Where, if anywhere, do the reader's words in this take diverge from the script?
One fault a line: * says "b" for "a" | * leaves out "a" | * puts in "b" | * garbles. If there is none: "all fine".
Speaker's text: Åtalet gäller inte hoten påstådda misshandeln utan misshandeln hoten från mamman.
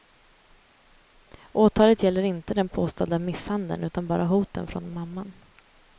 * says "den" for "hoten"
* says "bara" for "misshandeln"